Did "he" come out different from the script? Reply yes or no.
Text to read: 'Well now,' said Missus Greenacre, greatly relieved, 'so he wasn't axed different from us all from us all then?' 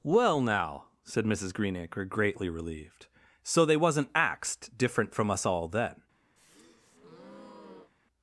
yes